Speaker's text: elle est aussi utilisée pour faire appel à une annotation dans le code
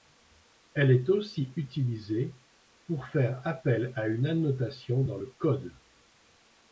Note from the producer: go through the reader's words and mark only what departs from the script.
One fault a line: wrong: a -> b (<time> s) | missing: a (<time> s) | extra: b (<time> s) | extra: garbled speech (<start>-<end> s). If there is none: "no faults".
no faults